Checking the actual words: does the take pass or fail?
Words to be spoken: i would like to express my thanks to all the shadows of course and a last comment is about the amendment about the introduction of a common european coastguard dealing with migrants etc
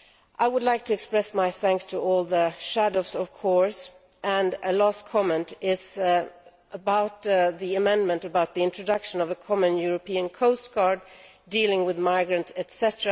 pass